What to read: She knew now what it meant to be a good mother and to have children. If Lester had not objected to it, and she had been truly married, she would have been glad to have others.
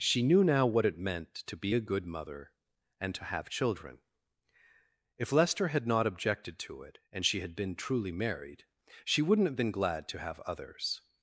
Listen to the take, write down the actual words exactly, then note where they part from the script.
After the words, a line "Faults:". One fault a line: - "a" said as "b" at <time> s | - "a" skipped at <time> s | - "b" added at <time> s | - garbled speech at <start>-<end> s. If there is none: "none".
She knew now what it meant to be a good mother and to have children. If Lester had not objected to it, and she had been truly married, she wouldn't have been glad to have others.
Faults:
- "would" said as "wouldn't" at 9.2 s